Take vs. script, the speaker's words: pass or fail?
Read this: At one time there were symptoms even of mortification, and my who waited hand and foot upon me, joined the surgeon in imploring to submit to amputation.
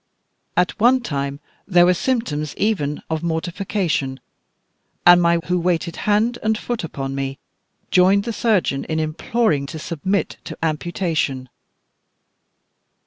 pass